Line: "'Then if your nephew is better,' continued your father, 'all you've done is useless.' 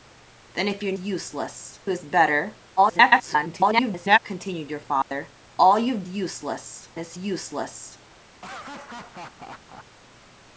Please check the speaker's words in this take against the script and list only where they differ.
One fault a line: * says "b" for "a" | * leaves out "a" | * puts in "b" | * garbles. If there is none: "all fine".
* says "useless" for "nephew"
* garbles
* says "useless" for "done"